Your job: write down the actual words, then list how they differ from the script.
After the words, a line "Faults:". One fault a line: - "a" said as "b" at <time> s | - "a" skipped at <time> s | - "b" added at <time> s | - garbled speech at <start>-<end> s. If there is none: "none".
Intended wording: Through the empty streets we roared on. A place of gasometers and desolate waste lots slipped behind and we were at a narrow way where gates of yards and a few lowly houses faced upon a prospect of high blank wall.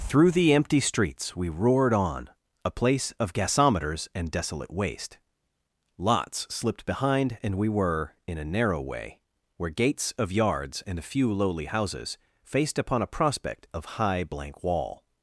Through the empty streets we roared on. A place of gasometers and desolate waste lots slipped behind and we were in a narrow way where gates of yards and a few lowly houses faced upon a prospect of high blank wall.
Faults:
- "at" said as "in" at 8.2 s